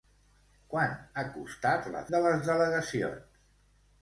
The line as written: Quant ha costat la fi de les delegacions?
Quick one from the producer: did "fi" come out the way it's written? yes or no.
no